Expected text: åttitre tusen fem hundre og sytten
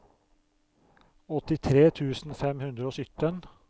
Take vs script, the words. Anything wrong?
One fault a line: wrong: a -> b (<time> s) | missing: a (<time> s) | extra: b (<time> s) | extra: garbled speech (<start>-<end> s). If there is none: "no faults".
no faults